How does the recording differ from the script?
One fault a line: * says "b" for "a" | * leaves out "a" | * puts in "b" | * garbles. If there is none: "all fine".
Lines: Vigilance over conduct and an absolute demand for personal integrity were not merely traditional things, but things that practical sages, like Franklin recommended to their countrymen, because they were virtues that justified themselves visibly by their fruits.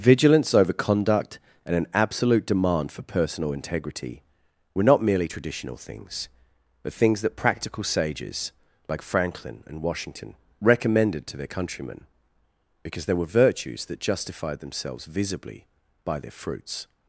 * puts in "and Washington"